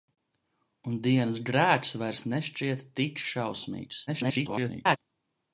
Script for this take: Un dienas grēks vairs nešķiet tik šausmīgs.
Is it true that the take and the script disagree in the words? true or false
true